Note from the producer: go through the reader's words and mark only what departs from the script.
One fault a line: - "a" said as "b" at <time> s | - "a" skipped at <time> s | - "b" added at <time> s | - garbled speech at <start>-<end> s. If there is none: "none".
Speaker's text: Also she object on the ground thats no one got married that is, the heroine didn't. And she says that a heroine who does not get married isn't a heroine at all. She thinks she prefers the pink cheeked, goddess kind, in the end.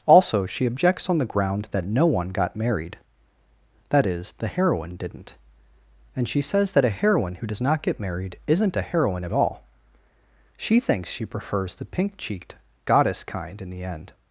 - "object" said as "objects" at 0.7 s
- "thats" said as "that" at 1.7 s